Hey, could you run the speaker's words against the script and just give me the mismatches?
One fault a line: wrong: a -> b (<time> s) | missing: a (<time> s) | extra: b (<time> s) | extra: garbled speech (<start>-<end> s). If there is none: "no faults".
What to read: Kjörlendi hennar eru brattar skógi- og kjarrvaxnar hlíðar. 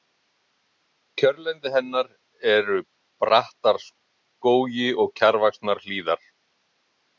no faults